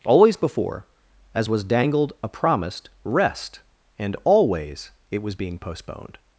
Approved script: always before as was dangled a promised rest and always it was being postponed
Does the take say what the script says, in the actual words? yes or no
yes